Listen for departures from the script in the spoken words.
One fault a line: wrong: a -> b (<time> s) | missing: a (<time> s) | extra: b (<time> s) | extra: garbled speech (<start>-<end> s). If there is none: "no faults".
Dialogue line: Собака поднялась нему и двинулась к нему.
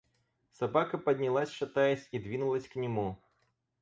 wrong: нему -> шатаясь (1.5 s)